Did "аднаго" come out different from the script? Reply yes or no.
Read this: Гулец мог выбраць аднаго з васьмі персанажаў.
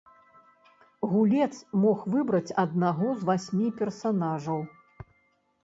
no